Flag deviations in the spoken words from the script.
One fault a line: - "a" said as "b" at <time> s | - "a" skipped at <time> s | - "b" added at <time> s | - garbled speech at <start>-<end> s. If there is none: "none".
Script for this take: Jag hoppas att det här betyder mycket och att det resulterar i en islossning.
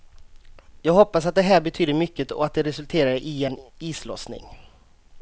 none